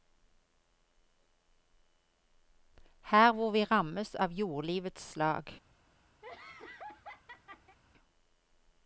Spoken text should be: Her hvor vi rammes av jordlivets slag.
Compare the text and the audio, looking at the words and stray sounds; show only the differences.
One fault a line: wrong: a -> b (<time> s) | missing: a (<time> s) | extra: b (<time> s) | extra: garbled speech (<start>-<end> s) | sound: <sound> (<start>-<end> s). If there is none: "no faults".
sound: laugh (6.2-7.8 s)